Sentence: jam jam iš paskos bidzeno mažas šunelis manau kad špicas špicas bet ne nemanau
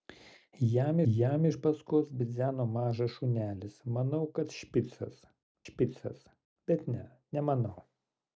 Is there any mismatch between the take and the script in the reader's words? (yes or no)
no